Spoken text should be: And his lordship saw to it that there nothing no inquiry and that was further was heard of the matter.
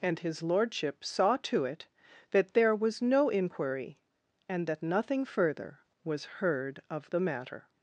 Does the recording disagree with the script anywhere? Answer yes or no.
yes